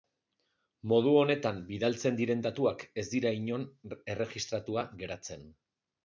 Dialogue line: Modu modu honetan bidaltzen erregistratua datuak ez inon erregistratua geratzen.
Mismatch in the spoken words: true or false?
true